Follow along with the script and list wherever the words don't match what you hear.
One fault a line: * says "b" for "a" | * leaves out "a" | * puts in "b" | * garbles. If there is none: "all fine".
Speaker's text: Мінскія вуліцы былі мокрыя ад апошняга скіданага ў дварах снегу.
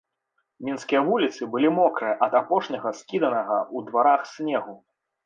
all fine